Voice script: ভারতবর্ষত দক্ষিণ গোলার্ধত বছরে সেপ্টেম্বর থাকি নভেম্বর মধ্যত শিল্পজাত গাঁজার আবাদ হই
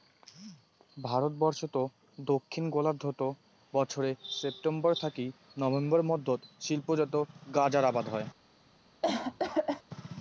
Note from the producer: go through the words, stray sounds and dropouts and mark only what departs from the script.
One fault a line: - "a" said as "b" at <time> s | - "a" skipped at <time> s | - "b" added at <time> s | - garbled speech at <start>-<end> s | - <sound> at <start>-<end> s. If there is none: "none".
- cough at 9.0-9.8 s